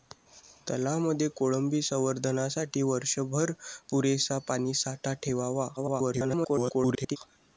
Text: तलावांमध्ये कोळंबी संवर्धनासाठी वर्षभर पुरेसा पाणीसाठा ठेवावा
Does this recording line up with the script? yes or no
no